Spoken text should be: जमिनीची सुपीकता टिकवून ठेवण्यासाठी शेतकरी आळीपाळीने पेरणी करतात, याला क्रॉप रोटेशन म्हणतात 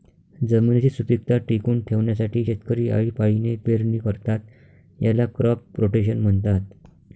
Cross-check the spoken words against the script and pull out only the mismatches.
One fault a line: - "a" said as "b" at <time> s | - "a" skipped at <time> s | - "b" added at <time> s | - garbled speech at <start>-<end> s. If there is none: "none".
none